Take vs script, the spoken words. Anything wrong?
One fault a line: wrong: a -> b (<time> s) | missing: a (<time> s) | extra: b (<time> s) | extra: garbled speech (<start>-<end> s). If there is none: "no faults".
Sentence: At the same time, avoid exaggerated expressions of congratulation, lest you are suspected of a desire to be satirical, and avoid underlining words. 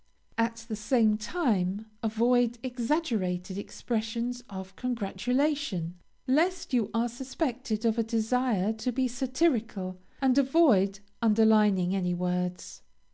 extra: any (12.0 s)